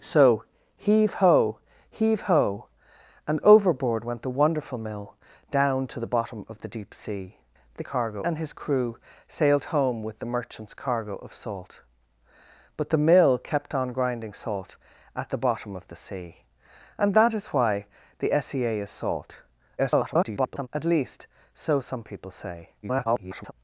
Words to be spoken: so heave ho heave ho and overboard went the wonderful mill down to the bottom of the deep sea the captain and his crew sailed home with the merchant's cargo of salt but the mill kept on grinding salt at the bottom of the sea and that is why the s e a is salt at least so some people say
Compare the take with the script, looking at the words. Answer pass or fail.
fail